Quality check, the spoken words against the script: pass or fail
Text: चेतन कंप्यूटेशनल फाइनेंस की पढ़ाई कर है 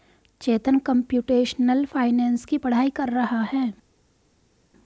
fail